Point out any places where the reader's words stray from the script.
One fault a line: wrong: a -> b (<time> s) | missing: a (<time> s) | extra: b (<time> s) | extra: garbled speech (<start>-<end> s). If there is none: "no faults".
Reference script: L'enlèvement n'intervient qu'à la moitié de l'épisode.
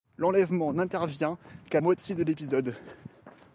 missing: la (1.8 s)